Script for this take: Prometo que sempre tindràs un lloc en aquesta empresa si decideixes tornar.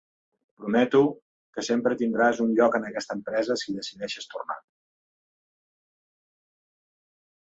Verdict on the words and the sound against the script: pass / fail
pass